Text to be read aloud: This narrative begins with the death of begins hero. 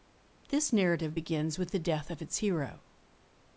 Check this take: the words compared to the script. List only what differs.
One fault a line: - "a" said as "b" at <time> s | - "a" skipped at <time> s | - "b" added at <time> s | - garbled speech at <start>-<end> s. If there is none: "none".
- "begins" said as "its" at 2.2 s